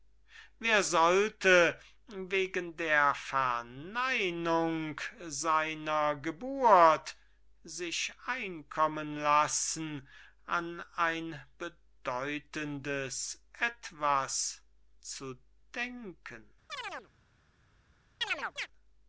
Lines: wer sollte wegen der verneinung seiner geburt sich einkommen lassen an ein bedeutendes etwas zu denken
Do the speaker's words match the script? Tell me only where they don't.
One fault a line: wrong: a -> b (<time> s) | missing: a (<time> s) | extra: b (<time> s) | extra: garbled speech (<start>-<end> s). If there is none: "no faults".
no faults